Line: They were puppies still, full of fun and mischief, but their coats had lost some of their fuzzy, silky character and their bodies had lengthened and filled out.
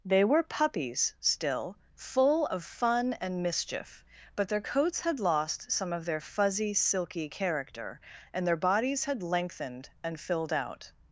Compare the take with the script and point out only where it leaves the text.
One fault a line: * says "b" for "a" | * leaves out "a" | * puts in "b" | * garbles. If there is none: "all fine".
all fine